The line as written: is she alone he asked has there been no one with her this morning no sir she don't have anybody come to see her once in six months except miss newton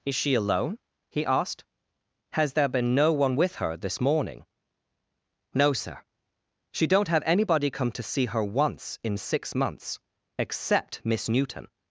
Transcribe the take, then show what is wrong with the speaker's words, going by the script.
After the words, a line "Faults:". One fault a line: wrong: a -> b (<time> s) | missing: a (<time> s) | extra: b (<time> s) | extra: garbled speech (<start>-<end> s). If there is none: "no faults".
is she alone he asked has there been no one with her this morning no sir she don't have anybody come to see her once in six months except miss newton
Faults:
no faults